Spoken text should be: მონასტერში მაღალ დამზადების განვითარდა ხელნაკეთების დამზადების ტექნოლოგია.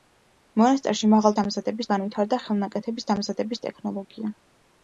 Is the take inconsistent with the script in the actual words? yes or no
no